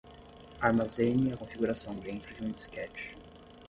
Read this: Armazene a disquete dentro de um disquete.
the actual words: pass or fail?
fail